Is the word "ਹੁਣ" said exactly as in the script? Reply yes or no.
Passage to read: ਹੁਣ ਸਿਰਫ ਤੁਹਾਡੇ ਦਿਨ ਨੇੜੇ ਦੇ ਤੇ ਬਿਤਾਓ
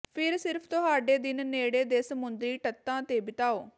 no